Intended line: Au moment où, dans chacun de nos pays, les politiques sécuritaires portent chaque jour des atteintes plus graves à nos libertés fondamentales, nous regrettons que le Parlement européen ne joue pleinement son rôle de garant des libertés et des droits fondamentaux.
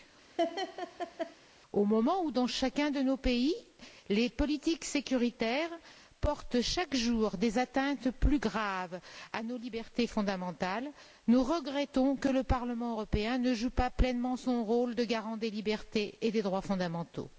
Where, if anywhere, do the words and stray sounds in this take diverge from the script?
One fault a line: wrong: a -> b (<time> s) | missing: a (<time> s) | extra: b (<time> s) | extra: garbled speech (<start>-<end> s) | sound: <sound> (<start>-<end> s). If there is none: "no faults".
sound: laugh (0.4-1.4 s)
extra: pas (13.7 s)